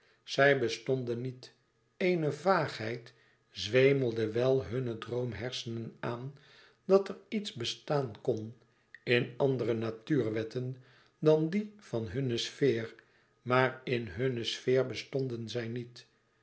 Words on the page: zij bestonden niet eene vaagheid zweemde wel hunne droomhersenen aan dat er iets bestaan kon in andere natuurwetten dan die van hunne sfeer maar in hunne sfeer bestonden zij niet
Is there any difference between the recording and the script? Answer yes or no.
no